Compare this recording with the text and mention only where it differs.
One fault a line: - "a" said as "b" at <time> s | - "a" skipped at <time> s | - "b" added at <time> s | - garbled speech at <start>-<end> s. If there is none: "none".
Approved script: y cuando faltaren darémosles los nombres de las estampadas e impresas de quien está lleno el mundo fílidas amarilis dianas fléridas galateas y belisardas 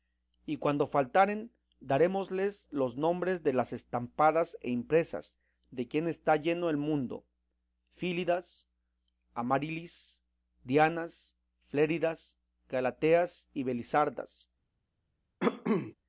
none